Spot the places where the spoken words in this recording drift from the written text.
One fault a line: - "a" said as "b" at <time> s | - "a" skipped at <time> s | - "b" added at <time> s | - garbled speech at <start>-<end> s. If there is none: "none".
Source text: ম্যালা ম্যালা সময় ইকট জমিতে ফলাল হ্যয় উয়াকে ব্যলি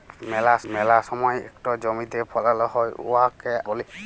none